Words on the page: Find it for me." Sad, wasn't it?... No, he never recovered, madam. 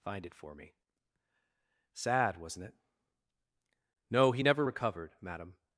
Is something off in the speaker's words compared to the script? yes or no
no